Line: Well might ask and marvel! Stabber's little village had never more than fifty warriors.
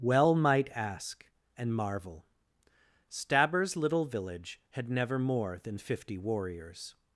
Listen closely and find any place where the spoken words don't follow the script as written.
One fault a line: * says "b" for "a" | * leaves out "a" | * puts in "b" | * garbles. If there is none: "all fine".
all fine